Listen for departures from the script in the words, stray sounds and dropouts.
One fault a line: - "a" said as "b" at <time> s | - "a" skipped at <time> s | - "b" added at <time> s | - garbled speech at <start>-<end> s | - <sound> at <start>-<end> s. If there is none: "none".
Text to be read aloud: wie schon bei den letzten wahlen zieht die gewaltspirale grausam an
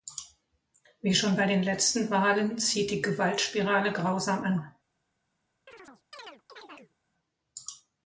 - chirp at 5.7-7.0 s